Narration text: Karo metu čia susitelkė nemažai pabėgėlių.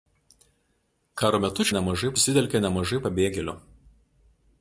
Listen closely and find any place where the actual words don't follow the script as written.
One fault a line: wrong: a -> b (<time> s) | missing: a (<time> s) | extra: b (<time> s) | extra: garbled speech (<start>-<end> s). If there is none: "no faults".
wrong: čia -> nemažai (1.7 s)